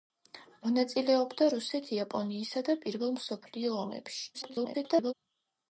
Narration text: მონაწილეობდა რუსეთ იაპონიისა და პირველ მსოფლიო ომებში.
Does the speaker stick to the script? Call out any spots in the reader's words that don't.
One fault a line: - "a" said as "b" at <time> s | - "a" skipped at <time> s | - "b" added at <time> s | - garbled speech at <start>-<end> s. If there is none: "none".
- garbled speech at 4.3-5.1 s